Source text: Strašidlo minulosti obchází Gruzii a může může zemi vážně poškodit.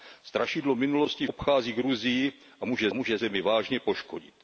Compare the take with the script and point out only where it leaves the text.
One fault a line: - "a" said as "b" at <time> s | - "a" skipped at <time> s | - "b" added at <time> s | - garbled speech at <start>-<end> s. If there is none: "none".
none